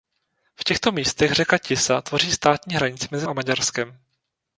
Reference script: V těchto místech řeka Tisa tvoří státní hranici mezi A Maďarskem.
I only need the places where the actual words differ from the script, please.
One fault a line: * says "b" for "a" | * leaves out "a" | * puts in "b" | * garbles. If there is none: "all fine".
all fine